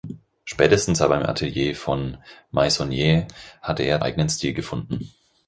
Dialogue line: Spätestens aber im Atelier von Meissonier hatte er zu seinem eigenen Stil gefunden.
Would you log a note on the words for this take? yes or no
yes